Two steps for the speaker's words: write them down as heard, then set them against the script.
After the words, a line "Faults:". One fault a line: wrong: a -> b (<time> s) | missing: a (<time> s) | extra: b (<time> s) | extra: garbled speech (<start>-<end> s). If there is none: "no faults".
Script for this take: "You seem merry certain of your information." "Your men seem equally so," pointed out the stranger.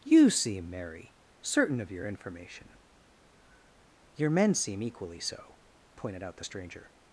"You seem merry certain of your information." "Your men seem equally so," pointed out the stranger.
Faults:
no faults